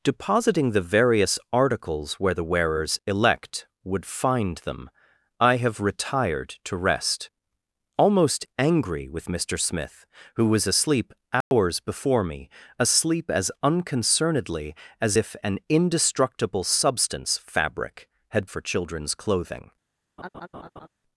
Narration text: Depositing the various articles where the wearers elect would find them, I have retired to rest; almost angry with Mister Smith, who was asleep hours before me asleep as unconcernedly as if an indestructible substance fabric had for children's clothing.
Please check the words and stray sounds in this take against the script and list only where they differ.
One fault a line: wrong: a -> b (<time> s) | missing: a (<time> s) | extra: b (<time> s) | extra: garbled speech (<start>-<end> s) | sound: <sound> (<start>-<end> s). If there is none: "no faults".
sound: dropout (11.4-11.5 s)
sound: laugh (20.2-20.9 s)